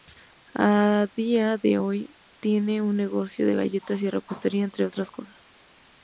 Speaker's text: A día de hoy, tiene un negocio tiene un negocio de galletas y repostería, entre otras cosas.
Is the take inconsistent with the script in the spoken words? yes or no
yes